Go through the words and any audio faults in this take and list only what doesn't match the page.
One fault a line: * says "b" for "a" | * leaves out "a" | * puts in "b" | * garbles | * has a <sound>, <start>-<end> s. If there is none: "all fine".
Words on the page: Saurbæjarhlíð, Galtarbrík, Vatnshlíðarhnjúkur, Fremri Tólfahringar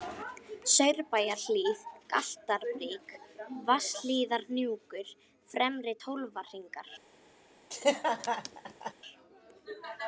* has a laugh, 7.7-8.9 s